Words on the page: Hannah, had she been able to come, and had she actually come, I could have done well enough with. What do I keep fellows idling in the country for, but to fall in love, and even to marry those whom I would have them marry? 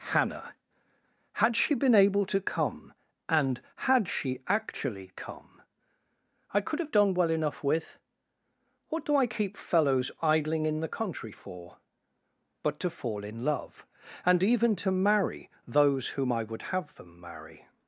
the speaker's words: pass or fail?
pass